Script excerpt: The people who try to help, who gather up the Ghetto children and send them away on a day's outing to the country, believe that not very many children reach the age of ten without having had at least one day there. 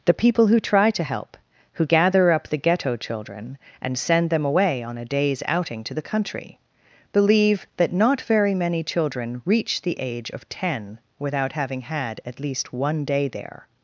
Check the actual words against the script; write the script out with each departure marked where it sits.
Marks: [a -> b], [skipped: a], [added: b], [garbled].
The people who try to help, who gather up the Ghetto children and send them away on a day's outing to the country, believe that not very many children reach the age of ten without having had at least one day there.